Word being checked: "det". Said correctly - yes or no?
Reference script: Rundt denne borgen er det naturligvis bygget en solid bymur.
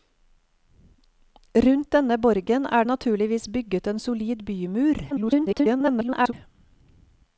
no